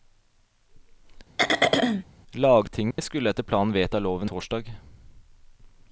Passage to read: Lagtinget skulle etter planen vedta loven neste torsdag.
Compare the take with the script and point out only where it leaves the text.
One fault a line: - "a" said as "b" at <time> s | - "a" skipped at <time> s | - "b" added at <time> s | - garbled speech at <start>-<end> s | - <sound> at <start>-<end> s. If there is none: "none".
- throat clearing at 1.4-2.0 s
- dropout at 2.9-3.0 s
- "neste" skipped at 4.3 s